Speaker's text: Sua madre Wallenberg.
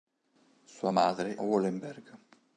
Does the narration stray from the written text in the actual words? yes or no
no